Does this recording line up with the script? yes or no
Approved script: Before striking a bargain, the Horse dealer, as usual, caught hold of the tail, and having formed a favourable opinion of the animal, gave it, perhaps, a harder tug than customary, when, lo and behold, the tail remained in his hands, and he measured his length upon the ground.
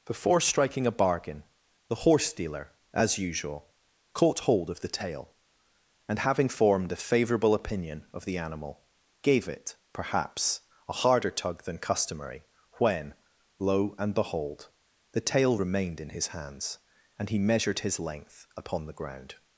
yes